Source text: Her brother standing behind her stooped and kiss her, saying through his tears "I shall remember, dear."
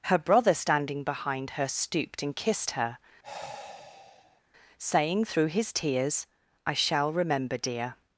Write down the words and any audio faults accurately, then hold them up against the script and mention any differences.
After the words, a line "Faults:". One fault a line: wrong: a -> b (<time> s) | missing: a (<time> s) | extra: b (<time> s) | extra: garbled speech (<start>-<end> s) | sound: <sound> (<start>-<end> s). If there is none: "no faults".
Her brother standing behind her stooped and kissed her, saying through his tears "I shall remember, dear."
Faults:
wrong: kiss -> kissed (2.4 s)
sound: sigh (3.2-4.4 s)